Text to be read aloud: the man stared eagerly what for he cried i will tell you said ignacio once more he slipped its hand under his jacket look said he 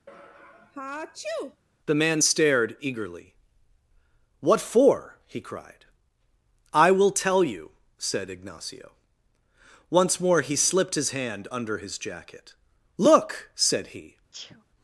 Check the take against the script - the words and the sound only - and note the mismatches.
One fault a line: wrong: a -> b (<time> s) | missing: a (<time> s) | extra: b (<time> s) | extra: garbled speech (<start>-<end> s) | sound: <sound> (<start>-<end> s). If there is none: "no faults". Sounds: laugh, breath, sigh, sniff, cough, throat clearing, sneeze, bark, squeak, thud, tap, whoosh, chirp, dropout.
sound: sneeze (0.1-1.6 s)
wrong: its -> his (11.0 s)
sound: sneeze (14.3-14.6 s)